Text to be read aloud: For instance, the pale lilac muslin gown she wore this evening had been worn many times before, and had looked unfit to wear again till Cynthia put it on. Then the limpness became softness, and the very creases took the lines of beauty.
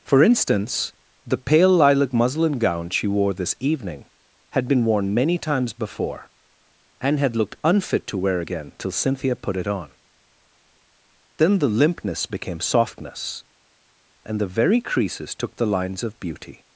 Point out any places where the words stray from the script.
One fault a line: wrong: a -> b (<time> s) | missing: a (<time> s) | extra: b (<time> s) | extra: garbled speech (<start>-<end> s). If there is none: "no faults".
no faults